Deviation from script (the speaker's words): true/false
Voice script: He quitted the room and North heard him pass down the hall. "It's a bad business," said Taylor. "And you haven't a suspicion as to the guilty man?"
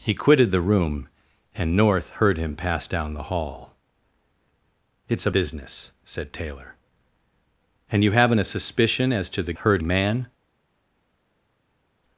true